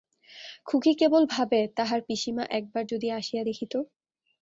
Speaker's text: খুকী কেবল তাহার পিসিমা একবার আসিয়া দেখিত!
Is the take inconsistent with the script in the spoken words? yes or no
yes